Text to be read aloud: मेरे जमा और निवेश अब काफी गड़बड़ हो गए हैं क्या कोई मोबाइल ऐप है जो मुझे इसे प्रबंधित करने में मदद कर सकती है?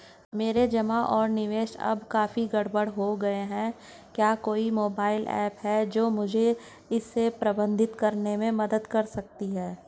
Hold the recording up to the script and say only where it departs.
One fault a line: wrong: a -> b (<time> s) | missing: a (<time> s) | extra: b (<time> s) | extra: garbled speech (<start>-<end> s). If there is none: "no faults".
no faults